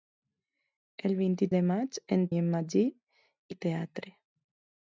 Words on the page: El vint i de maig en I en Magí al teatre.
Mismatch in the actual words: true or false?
false